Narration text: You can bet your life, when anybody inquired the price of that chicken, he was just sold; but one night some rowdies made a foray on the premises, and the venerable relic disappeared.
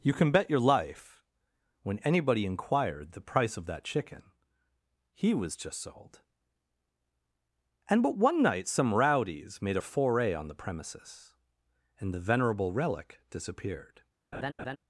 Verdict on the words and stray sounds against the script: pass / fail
fail